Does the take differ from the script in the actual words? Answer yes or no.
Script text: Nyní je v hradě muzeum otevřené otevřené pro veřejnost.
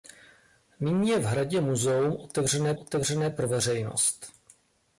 no